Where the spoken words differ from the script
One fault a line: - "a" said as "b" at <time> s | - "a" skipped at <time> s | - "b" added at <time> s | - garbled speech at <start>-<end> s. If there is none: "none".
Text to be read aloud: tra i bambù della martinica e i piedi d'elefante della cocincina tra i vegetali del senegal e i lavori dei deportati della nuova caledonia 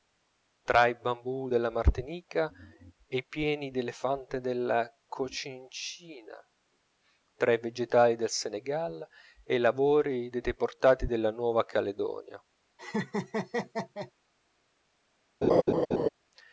none